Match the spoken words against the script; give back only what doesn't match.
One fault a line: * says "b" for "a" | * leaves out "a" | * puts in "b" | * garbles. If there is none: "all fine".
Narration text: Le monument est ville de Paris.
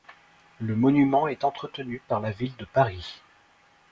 * puts in "entretenu par la"